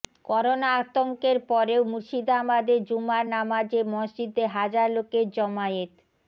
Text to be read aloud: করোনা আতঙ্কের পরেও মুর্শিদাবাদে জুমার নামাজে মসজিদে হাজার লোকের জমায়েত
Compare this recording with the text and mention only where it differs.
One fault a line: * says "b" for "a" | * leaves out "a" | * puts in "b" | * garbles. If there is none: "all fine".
all fine